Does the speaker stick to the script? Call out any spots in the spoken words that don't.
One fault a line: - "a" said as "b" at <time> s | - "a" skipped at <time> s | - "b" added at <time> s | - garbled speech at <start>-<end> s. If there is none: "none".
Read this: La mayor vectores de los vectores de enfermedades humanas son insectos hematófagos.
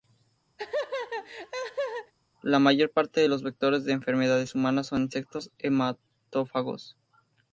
- "vectores" said as "parte" at 2.9 s